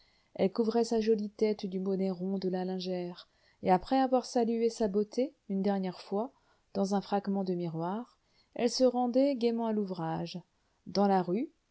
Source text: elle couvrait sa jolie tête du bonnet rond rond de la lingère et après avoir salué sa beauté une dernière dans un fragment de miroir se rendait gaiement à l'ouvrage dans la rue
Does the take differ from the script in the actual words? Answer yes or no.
yes